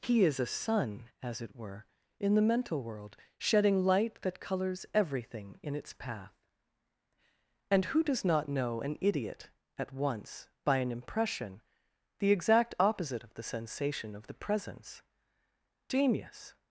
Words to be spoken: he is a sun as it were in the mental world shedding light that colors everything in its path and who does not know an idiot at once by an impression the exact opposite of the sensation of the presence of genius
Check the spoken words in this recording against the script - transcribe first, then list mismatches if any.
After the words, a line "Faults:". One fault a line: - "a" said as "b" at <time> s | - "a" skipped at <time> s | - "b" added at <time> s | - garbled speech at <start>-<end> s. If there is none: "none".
he is a sun as it were in the mental world shedding light that colors everything in its path and who does not know an idiot at once by an impression the exact opposite of the sensation of the presence genius
Faults:
- "of" skipped at 15.0 s